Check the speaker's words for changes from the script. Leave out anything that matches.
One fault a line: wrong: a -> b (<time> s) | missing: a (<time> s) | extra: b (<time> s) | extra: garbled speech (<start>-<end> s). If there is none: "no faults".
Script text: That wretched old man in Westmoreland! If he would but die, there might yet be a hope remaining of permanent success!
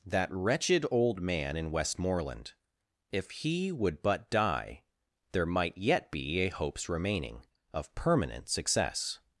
wrong: hope -> hopes (6.5 s)